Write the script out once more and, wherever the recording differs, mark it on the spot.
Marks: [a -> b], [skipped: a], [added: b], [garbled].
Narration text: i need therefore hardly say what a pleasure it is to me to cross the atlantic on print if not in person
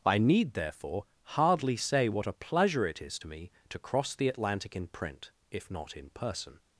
i need therefore hardly say what a pleasure it is to me to cross the atlantic [on -> in] print if not in person